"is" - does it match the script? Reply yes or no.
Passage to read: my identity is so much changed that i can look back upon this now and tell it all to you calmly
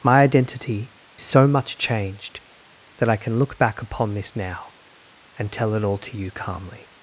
no